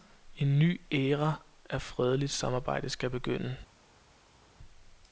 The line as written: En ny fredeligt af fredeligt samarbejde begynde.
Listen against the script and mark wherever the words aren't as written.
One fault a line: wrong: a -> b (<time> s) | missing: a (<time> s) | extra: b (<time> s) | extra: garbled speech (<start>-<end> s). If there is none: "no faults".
wrong: fredeligt -> æra (0.9 s)
extra: skal (2.9 s)